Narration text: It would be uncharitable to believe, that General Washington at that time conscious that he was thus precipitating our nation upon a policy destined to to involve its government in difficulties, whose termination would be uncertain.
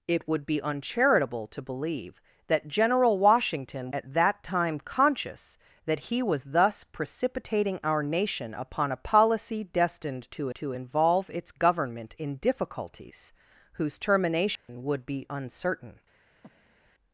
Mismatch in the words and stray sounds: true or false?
true